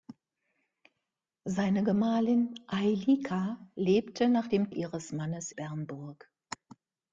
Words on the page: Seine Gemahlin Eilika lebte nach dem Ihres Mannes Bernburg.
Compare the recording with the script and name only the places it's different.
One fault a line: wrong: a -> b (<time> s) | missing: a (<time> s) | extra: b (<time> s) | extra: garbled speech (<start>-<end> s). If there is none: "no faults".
no faults